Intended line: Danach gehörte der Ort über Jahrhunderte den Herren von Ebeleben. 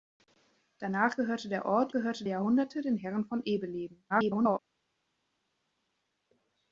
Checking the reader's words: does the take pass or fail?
fail